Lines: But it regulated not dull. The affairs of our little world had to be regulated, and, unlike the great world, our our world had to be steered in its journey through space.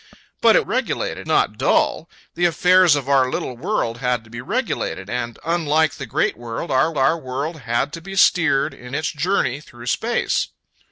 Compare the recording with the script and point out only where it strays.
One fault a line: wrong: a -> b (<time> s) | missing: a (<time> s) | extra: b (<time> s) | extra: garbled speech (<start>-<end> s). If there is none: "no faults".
no faults